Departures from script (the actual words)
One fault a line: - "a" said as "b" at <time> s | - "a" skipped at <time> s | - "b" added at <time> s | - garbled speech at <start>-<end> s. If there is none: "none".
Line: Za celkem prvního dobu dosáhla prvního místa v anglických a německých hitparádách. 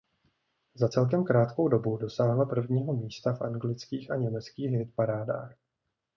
- "prvního" said as "krátkou" at 1.2 s